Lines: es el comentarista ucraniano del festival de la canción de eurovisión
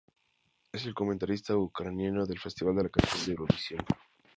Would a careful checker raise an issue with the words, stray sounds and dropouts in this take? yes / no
no